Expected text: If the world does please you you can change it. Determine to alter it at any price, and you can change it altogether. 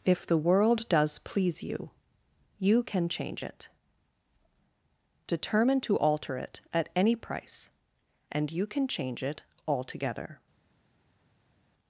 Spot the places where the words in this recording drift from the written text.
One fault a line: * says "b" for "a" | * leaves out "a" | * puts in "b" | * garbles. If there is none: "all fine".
all fine